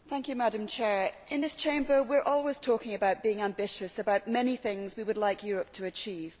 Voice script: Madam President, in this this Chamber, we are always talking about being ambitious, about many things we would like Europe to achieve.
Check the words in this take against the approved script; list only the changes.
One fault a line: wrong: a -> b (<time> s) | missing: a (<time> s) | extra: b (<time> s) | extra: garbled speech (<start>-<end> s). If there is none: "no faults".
missing: this (1.5 s)